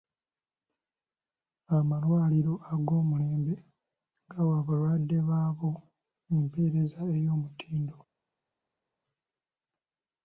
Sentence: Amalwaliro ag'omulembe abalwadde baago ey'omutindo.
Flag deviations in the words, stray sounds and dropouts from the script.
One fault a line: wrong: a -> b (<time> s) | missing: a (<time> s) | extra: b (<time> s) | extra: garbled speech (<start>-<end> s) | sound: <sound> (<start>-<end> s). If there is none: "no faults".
extra: gawa (4.3 s)
extra: empeereza (6.3 s)